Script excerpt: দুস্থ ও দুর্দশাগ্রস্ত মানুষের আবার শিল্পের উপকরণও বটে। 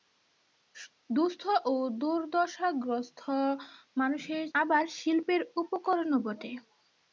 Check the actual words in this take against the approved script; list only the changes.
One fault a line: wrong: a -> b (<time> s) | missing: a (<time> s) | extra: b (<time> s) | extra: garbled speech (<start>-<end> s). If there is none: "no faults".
no faults